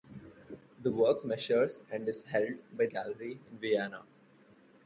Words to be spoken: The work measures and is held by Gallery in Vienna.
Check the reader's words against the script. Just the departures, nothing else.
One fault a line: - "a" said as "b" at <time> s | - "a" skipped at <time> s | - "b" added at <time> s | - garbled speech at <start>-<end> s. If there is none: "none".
none